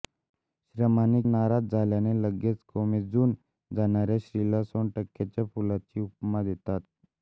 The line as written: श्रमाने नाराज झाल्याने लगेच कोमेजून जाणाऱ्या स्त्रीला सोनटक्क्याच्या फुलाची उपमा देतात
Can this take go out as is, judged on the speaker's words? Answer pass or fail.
pass